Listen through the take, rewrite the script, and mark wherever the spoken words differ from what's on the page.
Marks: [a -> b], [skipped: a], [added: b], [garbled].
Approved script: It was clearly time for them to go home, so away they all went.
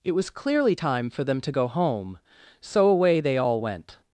It was clearly time for them to go home, so away they all went.